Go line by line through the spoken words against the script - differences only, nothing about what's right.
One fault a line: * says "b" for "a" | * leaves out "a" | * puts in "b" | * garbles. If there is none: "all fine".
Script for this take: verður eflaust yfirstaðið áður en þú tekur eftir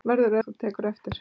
* leaves out "eflaust yfirstaðið áður"